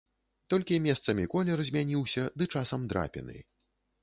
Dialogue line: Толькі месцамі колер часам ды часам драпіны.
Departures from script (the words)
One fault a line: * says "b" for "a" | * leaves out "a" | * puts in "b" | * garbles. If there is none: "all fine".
* says "змяніўся" for "часам"